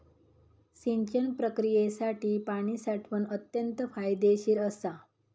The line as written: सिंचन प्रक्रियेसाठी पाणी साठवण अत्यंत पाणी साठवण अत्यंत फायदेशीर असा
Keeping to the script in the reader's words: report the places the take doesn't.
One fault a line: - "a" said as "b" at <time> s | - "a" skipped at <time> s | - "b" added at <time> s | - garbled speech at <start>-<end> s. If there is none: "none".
- "पाणी साठवण अत्यंत" skipped at 3.8 s